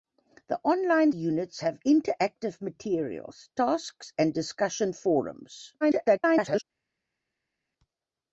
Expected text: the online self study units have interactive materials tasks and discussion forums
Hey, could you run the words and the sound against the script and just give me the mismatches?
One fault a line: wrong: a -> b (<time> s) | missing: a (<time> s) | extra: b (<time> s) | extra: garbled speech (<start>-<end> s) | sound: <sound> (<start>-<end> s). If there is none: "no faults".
missing: self study (1.1 s)
extra: garbled speech (5.8-6.6 s)